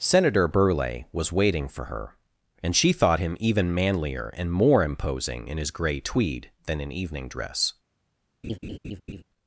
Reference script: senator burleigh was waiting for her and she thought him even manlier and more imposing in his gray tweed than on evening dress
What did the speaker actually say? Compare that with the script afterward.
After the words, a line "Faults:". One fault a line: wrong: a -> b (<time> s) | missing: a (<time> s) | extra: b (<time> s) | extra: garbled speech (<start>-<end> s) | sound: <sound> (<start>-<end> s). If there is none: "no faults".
senator burleigh was waiting for her and she thought him even manlier and more imposing in his gray tweed than in evening dress
Faults:
wrong: on -> in (6.8 s)
sound: laugh (8.4-9.2 s)